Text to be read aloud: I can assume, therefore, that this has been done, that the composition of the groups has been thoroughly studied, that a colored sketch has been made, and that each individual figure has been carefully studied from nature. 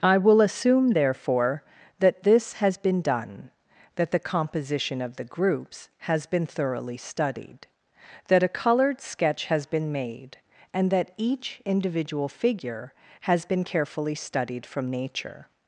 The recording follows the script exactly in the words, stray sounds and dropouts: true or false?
false